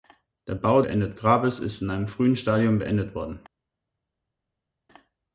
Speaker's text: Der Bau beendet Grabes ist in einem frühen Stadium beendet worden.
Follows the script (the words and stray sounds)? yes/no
yes